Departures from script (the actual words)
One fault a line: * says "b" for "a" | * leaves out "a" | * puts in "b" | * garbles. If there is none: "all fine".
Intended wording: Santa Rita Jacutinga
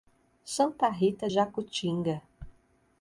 all fine